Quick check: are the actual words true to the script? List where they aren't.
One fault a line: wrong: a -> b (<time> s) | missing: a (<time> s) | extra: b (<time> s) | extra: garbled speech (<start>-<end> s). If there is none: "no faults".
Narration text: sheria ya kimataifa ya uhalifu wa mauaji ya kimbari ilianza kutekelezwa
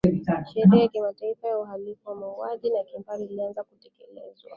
no faults